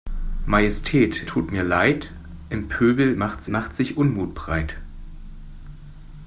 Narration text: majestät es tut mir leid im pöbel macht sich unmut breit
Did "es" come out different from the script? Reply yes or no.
yes